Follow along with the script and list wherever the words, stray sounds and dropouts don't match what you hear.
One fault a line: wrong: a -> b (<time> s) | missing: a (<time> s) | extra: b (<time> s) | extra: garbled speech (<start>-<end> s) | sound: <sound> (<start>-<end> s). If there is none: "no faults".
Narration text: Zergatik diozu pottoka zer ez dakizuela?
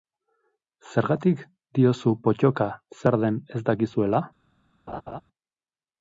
extra: den (3.3 s)
sound: laugh (4.9-5.2 s)